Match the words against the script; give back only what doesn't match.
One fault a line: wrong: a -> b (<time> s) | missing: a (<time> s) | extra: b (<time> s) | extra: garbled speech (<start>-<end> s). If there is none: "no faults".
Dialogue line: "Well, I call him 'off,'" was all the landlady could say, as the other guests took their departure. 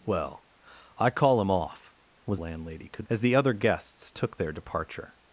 missing: all the (2.4 s)
missing: say (3.1 s)